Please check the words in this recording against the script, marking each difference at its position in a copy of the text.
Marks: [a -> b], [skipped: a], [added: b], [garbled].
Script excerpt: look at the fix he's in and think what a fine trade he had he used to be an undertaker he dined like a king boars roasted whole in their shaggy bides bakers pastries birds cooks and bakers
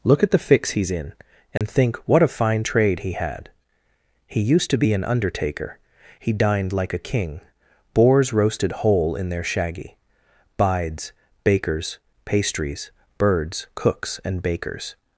look at the fix he's in and think what a fine trade he had he used to be an undertaker he dined like a king boars roasted whole in their shaggy bides bakers pastries birds cooks and bakers